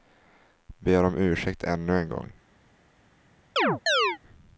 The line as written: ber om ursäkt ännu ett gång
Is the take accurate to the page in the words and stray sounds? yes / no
no